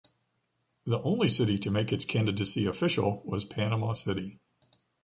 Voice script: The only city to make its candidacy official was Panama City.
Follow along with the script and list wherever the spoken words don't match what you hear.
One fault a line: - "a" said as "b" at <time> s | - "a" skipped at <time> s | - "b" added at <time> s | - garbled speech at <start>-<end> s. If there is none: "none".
none